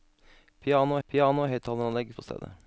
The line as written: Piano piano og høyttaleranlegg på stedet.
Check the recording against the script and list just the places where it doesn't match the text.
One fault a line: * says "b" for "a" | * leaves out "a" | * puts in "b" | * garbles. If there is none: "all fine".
all fine